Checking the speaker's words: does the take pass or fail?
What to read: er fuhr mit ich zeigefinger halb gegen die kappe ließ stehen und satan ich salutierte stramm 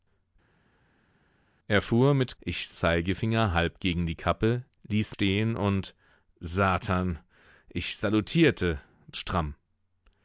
pass